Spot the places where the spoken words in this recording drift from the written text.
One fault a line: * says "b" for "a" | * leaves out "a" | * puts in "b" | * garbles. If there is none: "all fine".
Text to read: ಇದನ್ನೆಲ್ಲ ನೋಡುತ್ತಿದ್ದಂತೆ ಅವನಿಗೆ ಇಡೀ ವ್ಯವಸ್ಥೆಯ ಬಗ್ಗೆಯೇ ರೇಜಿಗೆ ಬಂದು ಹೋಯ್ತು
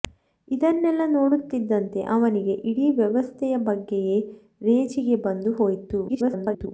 * garbles